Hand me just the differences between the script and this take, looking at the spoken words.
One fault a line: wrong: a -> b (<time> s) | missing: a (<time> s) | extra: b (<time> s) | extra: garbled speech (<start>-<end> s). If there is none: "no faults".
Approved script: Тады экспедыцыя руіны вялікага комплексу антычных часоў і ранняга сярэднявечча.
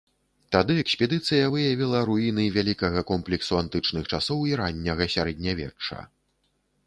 extra: выявіла (1.5 s)